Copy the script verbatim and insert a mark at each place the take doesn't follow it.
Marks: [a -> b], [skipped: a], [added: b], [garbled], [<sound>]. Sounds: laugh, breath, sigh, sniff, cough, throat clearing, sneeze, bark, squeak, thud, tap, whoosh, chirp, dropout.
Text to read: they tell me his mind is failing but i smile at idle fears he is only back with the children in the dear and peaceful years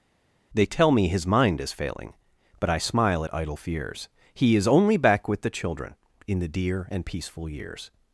they tell me his mind is failing but i smile at idle fears he is only back with the children in the dear and peaceful years